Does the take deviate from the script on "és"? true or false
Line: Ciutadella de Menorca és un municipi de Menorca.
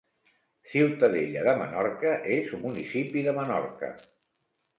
false